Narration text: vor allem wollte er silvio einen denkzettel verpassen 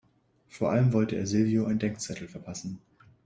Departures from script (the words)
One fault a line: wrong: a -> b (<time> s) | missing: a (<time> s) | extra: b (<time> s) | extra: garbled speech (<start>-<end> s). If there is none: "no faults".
no faults